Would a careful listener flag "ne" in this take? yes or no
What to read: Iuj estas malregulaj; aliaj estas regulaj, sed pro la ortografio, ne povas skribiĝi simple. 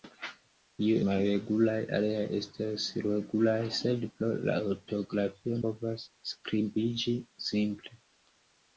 yes